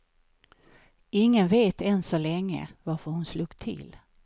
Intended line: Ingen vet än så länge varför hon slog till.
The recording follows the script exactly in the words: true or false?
true